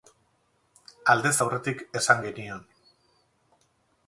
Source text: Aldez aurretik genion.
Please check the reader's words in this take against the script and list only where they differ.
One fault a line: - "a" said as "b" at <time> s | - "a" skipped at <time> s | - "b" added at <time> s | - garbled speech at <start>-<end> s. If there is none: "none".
- "esan" added at 2.0 s